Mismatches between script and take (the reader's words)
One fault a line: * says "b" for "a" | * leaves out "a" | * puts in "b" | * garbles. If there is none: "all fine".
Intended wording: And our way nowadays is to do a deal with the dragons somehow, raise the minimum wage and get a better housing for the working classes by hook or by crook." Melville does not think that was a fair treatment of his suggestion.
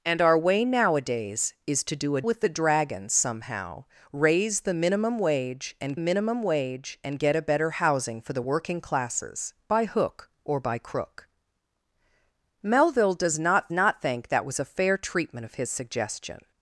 * leaves out "deal"
* puts in "minimum wage and"
* puts in "not"